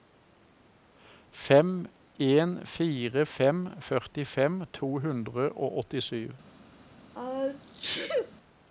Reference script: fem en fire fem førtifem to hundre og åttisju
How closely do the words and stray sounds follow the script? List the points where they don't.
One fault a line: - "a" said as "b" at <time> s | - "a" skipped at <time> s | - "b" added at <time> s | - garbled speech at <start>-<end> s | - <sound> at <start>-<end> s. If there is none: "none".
- sneeze at 7.1-8.3 s